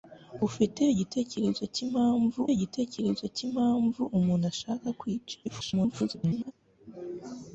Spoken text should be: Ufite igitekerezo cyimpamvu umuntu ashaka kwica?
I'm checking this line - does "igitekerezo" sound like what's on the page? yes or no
yes